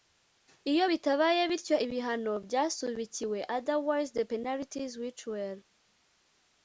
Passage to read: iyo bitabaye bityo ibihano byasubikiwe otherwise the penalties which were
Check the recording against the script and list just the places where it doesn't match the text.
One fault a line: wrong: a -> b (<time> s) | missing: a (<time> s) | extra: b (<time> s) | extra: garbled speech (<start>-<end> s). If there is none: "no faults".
no faults